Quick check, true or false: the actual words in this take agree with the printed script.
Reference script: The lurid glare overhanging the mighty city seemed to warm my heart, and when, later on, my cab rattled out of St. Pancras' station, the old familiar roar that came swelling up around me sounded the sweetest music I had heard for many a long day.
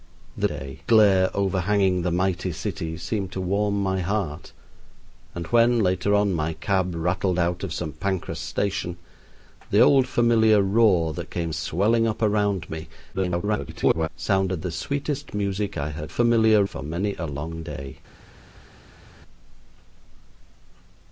false